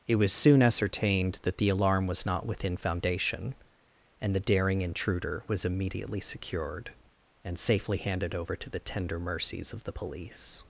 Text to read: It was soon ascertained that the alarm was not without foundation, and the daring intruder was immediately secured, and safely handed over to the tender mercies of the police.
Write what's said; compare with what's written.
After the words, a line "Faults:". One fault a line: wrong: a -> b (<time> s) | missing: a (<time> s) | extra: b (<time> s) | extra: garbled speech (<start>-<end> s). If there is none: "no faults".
It was soon ascertained that the alarm was not within foundation, and the daring intruder was immediately secured, and safely handed over to the tender mercies of the police.
Faults:
wrong: without -> within (2.5 s)